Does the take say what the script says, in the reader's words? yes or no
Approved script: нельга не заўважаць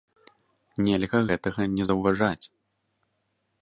no